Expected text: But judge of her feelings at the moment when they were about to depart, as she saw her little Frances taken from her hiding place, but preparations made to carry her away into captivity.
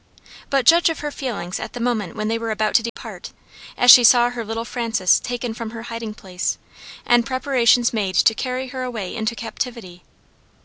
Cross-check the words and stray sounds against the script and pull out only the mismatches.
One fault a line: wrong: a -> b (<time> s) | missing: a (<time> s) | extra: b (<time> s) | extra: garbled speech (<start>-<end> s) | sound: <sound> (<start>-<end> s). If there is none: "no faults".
sound: dropout (2.9-3.0 s)
wrong: but -> and (7.0 s)